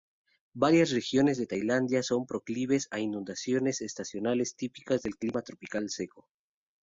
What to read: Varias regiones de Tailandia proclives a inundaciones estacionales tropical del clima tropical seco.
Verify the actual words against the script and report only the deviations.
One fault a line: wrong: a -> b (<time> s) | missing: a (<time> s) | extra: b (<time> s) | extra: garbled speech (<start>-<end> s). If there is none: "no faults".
extra: son (2.0 s)
wrong: tropical -> típicas (4.6 s)